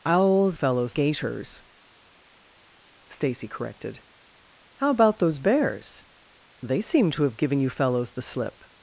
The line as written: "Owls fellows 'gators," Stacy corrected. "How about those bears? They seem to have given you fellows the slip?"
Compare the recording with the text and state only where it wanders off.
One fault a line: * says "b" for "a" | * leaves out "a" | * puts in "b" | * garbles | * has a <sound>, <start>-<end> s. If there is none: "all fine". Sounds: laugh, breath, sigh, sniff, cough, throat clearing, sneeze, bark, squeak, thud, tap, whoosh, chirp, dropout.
all fine